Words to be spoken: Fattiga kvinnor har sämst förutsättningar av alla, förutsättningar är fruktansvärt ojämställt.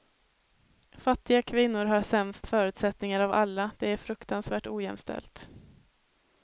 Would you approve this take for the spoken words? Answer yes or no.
no